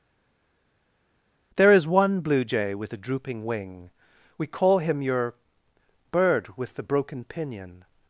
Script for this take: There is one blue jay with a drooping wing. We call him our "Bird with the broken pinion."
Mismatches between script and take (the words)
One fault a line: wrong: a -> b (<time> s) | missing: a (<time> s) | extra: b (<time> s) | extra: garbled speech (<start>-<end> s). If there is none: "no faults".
wrong: our -> your (5.0 s)